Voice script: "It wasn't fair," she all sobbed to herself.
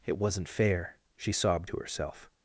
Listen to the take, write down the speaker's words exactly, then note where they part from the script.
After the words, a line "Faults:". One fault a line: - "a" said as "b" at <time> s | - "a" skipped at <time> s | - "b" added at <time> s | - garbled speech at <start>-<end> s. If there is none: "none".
"It wasn't fair," she sobbed to herself.
Faults:
- "all" skipped at 1.3 s